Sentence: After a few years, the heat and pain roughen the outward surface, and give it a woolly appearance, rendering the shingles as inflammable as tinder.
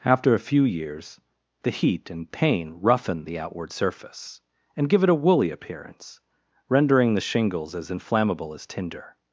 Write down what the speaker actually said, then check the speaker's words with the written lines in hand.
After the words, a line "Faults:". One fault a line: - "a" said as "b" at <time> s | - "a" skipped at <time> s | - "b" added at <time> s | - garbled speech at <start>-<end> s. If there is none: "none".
After a few years, the heat and pain roughen the outward surface, and give it a woolly appearance, rendering the shingles as inflammable as tinder.
Faults:
none